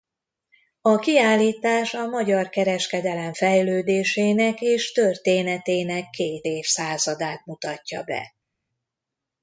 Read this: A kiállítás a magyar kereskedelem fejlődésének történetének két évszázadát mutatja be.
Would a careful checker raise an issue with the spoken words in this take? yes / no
yes